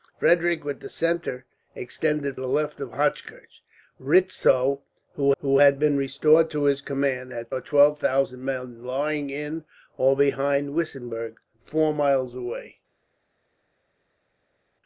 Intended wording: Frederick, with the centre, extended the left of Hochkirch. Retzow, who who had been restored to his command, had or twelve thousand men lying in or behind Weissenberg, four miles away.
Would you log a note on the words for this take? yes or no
no